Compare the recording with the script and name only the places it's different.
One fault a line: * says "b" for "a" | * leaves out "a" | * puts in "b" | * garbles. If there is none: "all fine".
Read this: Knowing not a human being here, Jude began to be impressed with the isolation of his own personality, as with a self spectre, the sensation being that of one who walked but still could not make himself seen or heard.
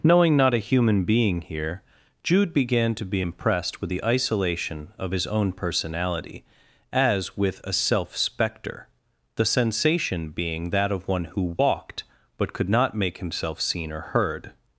* leaves out "still"